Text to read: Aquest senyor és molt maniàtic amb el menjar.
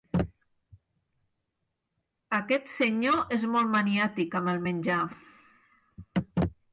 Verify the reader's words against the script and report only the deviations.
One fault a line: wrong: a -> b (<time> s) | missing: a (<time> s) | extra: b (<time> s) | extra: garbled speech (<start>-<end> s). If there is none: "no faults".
no faults